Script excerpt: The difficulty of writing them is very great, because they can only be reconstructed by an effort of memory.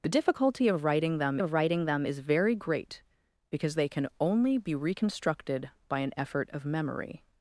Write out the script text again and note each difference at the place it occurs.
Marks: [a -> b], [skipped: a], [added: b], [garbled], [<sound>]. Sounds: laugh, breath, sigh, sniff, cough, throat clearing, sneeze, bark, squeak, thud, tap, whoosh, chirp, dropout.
The difficulty of writing them [added: of writing them] is very great, because they can only be reconstructed by an effort of memory.